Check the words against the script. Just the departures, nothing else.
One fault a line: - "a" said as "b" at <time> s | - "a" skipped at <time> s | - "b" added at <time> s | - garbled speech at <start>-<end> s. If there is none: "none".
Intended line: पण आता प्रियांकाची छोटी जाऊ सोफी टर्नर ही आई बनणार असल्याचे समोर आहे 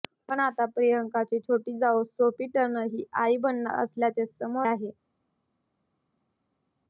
none